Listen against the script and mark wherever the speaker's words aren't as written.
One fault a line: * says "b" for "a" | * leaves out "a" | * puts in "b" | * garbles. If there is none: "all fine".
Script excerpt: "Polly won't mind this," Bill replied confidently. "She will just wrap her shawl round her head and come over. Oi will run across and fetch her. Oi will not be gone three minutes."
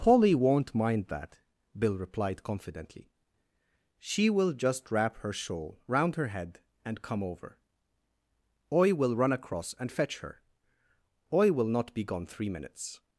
* says "that" for "this"